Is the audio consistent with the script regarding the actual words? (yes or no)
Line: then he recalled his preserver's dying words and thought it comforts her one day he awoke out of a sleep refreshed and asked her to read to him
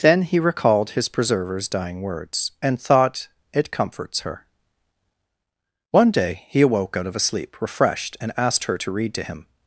yes